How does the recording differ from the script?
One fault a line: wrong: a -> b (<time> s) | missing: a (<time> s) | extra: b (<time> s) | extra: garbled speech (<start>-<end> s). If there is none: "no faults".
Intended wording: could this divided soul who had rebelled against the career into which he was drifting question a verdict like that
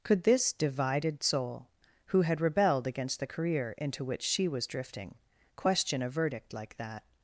wrong: he -> she (4.2 s)